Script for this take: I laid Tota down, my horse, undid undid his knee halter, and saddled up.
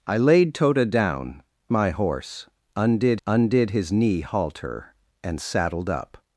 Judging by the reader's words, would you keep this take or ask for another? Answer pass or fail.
pass